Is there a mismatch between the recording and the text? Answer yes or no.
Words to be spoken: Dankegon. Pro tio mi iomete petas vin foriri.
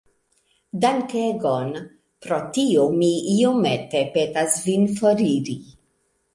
no